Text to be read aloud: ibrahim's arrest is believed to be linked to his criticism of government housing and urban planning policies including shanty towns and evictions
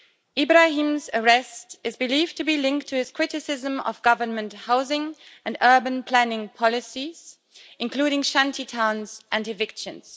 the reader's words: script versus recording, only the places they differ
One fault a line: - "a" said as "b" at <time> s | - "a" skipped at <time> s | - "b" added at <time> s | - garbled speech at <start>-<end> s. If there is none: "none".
none